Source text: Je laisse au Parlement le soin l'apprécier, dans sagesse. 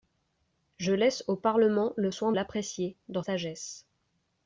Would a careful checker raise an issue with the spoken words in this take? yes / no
no